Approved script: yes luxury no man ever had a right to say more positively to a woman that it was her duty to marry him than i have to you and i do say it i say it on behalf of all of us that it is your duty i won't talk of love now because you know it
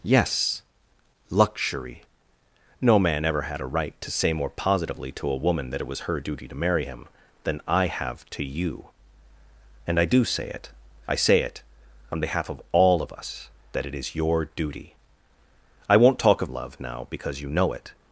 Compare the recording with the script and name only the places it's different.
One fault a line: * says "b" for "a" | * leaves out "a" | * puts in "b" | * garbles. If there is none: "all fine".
all fine